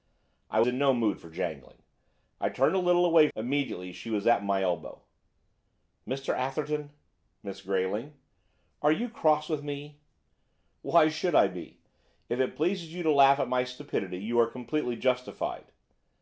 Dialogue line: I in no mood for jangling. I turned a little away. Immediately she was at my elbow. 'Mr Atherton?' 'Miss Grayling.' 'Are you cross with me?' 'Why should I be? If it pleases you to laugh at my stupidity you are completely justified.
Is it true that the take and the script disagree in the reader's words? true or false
false